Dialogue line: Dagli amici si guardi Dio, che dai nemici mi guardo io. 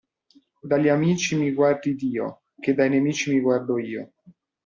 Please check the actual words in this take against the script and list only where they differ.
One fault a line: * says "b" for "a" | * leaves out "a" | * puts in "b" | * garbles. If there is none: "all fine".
* says "mi" for "si"